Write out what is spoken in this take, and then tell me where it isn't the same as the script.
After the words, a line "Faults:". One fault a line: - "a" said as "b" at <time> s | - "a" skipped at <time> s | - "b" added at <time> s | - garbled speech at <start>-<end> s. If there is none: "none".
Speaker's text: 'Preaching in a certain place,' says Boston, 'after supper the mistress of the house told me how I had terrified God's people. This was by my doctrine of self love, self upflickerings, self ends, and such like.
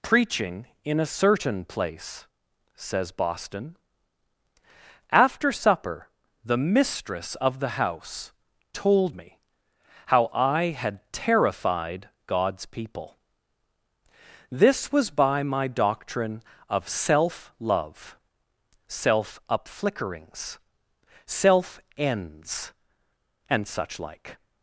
'Preaching in a certain place,' says Boston, 'after supper the mistress of the house told me how I had terrified God's people. This was by my doctrine of self love, self upflickerings, self ends, and such like.
Faults:
none